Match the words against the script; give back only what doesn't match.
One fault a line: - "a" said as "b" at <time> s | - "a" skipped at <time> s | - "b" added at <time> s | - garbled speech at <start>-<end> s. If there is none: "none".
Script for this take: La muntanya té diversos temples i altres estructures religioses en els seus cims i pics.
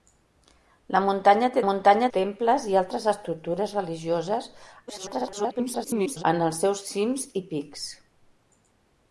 - "diversos" said as "muntanya" at 1.7 s
- garbled speech at 4.9-6.2 s